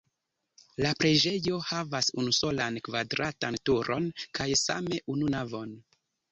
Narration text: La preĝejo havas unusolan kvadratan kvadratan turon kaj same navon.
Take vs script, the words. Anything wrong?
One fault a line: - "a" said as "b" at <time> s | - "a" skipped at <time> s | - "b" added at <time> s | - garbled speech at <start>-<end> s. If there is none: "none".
- "kvadratan" skipped at 3.6 s
- "unu" added at 5.2 s